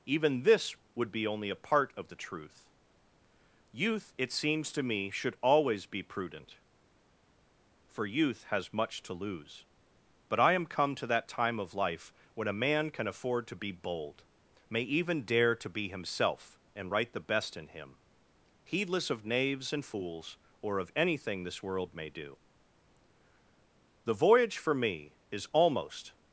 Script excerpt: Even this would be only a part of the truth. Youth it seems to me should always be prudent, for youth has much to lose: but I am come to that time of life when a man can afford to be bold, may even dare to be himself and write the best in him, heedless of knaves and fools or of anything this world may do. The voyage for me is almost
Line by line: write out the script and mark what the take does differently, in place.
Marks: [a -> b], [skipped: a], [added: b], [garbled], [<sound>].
Even this would be only a part of the truth. Youth it seems to me should always be prudent, for youth has much to lose: but I am come to that time of life when a man can afford to be bold, may even dare to be himself and write the best in him, heedless of knaves and fools or of anything this world may do. The voyage for me is almost